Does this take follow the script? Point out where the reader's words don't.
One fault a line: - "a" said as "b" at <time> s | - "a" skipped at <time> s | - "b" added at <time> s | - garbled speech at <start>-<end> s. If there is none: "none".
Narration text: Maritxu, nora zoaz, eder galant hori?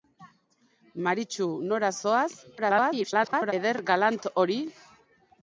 - garbled speech at 2.6-3.5 s